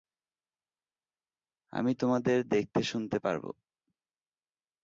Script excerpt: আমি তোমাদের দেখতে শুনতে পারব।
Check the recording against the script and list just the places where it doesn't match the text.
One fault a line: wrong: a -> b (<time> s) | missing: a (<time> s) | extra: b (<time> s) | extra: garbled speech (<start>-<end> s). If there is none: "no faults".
no faults